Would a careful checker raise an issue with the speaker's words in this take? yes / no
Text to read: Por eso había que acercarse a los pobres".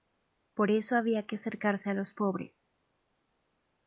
no